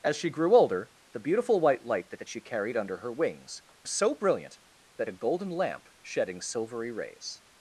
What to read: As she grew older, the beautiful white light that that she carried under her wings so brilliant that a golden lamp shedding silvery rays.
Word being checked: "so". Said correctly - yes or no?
yes